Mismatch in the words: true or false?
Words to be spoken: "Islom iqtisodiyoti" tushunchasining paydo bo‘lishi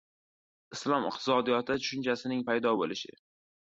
false